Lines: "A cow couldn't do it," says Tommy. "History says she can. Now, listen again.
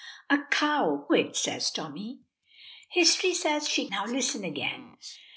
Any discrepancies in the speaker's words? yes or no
yes